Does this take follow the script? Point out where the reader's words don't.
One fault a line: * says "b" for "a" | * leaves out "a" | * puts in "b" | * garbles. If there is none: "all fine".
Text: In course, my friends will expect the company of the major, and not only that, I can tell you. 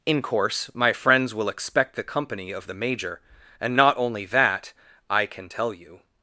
all fine